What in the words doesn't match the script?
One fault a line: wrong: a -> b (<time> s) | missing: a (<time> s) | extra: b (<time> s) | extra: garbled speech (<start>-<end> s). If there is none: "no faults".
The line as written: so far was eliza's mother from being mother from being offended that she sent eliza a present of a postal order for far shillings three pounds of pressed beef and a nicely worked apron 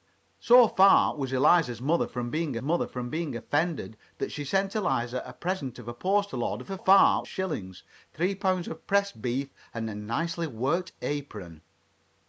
no faults